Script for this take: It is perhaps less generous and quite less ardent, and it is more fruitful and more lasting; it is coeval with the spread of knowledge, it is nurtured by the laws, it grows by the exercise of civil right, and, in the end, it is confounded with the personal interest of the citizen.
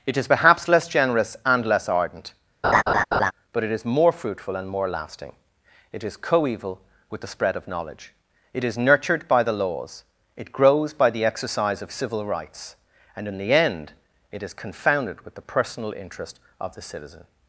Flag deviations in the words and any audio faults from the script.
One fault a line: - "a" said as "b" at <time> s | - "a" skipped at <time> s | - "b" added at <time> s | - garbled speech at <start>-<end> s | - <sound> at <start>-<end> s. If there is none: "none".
- "quite" skipped at 1.7 s
- laugh at 2.6-3.3 s
- "and" said as "but" at 3.5 s
- "right" said as "rights" at 12.2 s